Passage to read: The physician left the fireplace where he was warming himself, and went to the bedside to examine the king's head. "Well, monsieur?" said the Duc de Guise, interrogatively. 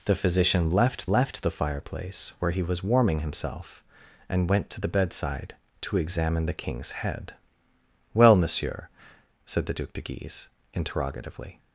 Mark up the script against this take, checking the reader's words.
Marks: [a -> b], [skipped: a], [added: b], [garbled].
The physician left [added: left] the fireplace where he was warming himself, and went to the bedside to examine the king's head. "Well, monsieur?" said the Duc de Guise, interrogatively.